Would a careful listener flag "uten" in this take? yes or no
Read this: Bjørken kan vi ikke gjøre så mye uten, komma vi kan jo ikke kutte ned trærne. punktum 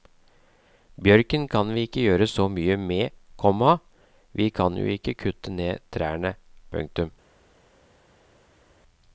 yes